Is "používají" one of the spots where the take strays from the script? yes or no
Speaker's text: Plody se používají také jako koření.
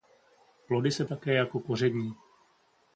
yes